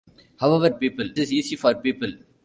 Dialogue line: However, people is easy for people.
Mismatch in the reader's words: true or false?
false